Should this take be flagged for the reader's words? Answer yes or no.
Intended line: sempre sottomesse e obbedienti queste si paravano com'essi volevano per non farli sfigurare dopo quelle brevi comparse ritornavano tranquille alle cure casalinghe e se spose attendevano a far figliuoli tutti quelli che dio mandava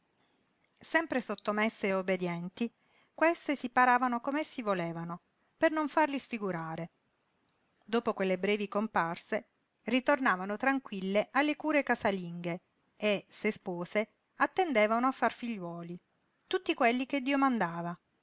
no